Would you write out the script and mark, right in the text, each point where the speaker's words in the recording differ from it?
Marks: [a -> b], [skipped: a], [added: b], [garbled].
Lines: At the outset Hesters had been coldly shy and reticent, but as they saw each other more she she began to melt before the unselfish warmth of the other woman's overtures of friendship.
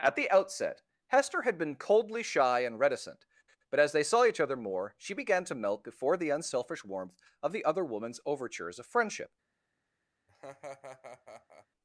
At the outset [Hesters -> Hester] had been coldly shy and reticent, but as they saw each other more she [skipped: she] began to melt before the unselfish warmth of the other woman's overtures of friendship.